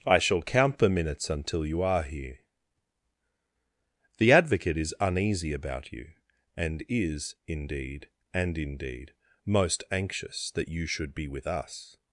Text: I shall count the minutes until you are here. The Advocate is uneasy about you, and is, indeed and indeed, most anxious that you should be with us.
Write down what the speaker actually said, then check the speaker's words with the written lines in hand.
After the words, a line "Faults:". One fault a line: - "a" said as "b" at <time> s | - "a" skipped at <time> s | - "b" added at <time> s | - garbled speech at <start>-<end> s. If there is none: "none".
I shall count the minutes until you are here. The Advocate is uneasy about you, and is, indeed and indeed, most anxious that you should be with us.
Faults:
none